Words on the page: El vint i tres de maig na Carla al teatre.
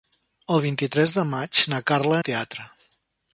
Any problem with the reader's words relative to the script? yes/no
no